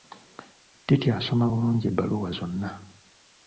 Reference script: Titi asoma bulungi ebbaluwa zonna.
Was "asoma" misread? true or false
false